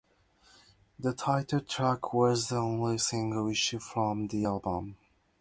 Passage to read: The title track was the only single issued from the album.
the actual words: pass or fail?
pass